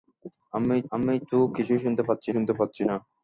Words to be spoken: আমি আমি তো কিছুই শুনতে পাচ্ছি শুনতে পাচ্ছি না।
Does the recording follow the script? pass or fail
pass